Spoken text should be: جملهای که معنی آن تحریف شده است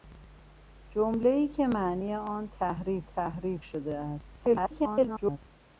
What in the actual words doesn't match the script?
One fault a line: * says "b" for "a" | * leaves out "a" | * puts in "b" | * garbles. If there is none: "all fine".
* puts in "تحریف"
* garbles